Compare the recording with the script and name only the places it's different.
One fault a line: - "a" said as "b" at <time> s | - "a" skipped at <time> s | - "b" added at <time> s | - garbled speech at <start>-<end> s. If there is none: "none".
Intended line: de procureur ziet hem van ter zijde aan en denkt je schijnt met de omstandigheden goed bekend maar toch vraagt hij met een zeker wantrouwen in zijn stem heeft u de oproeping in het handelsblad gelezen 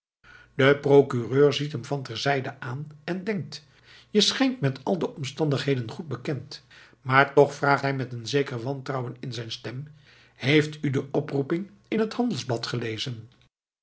- "al" added at 4.8 s